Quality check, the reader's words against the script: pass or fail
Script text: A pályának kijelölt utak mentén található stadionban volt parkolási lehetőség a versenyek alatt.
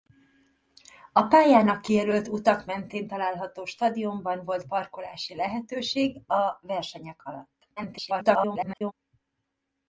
fail